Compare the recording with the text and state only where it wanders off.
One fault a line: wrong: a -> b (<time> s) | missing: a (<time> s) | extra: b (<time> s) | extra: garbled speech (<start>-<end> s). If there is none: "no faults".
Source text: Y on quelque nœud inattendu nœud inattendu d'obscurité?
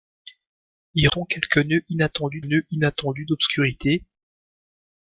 no faults